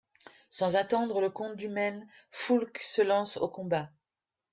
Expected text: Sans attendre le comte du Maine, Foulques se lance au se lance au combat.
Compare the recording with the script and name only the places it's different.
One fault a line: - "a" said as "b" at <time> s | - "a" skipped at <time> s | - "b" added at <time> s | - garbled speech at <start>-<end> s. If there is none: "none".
- "se lance au" skipped at 3.5 s